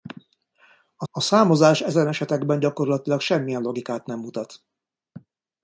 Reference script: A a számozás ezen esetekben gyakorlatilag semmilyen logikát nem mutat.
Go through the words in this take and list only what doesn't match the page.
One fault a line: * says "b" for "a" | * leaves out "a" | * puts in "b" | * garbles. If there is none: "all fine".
all fine